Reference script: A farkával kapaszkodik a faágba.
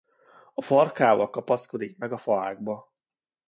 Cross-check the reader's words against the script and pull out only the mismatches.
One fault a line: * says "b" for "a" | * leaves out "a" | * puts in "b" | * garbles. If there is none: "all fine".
* puts in "meg"